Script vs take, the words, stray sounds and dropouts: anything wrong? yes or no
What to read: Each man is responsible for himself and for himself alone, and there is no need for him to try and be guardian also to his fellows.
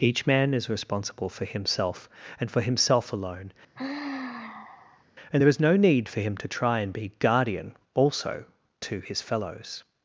yes